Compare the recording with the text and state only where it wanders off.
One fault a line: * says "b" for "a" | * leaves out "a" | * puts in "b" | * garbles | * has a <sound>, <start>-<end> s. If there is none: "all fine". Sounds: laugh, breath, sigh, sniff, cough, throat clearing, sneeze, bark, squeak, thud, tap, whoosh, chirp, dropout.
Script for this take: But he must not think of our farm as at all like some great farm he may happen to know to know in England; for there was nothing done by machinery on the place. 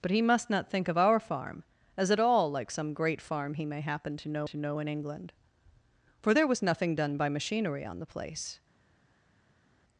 all fine